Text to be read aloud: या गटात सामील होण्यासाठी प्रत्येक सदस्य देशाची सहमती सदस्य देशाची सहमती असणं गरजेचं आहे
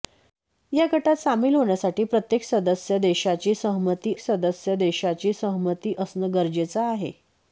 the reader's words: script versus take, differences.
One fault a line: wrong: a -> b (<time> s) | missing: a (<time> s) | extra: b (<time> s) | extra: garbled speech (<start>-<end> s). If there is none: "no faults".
no faults